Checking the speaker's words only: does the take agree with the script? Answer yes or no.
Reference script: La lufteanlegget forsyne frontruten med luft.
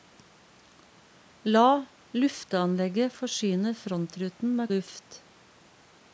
yes